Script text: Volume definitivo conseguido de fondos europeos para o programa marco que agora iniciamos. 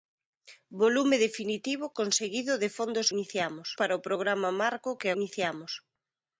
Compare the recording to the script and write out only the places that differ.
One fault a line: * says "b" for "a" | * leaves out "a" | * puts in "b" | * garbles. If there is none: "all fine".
* says "iniciamos" for "europeos"
* leaves out "agora"